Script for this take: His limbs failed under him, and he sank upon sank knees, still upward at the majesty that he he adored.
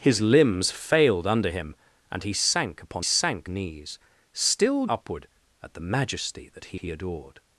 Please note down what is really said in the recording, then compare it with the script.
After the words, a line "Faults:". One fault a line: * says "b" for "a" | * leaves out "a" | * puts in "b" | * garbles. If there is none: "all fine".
His limbs failed under him, and he sank upon sank knees, still upward at the majesty that he he adored.
Faults:
all fine